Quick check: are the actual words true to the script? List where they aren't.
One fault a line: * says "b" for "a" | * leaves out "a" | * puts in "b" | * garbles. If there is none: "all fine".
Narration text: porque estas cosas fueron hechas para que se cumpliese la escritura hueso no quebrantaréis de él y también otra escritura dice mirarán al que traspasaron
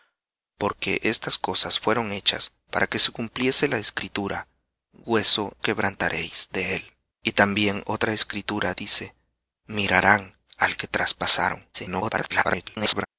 * leaves out "no"
* garbles